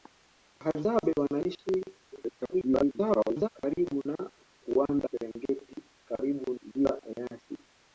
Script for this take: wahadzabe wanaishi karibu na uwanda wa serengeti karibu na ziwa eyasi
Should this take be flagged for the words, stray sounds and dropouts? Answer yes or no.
yes